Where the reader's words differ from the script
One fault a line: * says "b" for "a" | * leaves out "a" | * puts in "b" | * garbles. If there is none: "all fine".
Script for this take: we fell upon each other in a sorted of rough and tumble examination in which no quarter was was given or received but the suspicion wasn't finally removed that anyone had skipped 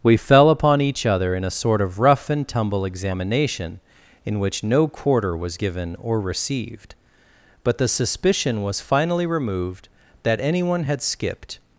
* says "sort" for "sorted"
* leaves out "was"
* says "was" for "wasn't"